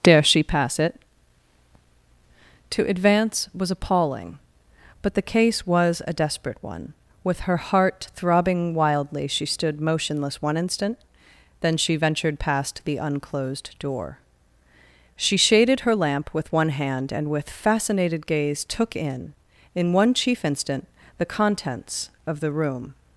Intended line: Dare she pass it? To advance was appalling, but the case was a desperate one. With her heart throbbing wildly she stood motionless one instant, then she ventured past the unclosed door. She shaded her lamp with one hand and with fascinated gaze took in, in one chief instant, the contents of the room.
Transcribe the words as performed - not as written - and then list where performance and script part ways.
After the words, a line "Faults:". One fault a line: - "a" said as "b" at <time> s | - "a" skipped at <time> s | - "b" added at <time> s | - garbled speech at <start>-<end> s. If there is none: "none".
Dare she pass it? To advance was appalling, but the case was a desperate one. With her heart throbbing wildly she stood motionless one instant, then she ventured past the unclosed door. She shaded her lamp with one hand and with fascinated gaze took in, in one chief instant, the contents of the room.
Faults:
none